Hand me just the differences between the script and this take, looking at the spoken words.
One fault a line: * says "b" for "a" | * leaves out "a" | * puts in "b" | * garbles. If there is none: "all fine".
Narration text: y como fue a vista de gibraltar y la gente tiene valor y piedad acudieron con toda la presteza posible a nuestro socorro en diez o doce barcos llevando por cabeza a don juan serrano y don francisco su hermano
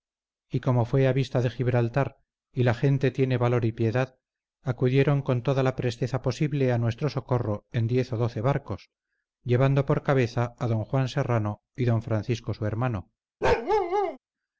all fine